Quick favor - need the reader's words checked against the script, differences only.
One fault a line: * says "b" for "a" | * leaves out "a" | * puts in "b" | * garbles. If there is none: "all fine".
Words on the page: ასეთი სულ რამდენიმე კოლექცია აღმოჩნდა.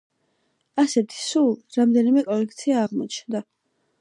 all fine